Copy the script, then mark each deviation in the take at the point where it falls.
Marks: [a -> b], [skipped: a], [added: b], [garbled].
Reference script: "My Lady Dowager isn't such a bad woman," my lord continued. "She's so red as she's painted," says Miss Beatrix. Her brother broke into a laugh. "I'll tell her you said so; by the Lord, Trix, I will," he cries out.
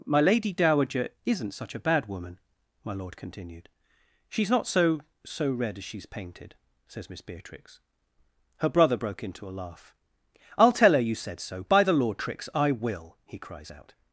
"My Lady Dowager isn't such a bad woman," my lord continued. "She's [added: not so] so red as she's painted," says Miss Beatrix. Her brother broke into a laugh. "I'll tell her you said so; by the Lord, Trix, I will," he cries out.